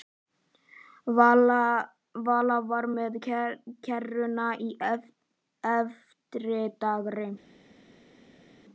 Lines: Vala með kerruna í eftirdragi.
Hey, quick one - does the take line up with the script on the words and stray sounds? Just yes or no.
no